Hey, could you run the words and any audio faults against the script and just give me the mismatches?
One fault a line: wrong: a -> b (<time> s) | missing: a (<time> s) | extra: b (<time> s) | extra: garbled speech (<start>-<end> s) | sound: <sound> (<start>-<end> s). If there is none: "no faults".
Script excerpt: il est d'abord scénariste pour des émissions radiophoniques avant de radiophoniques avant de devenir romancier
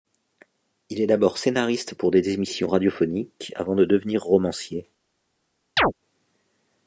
missing: radiophoniques avant de (3.9 s)
sound: chirp (5.8-5.9 s)